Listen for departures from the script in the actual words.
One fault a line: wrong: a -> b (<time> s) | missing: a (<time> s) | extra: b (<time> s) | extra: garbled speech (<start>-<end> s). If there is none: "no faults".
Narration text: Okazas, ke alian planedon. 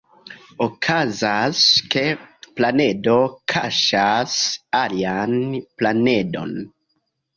extra: planedo kaŝas (2.6 s)